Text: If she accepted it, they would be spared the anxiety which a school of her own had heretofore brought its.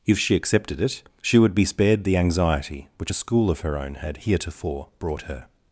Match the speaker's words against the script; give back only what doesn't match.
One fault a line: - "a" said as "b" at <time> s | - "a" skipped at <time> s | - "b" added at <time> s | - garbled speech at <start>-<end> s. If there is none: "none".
- "they" said as "she" at 1.2 s
- "its" said as "her" at 5.2 s